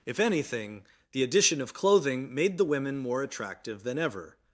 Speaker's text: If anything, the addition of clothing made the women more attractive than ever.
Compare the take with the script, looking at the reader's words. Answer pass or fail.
pass